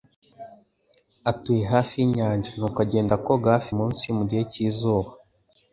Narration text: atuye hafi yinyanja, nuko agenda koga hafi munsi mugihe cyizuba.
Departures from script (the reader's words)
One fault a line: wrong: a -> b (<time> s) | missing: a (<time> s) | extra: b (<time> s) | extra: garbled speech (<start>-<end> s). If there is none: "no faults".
no faults